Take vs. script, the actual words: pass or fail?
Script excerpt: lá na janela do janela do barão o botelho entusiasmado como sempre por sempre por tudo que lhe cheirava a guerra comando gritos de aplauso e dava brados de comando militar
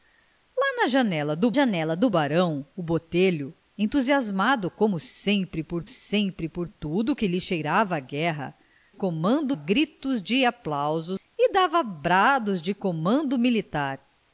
pass